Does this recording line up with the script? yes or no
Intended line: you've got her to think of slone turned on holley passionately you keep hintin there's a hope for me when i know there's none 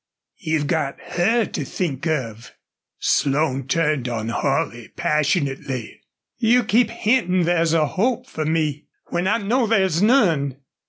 yes